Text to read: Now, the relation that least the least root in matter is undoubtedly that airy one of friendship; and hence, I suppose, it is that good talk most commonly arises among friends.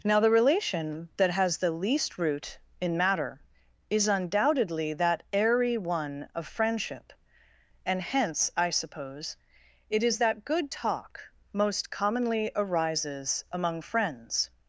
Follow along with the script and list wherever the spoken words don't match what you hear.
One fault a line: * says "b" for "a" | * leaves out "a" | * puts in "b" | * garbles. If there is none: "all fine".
* says "has" for "least"